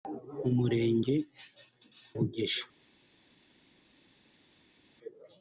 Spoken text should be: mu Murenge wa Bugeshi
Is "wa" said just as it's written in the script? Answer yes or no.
no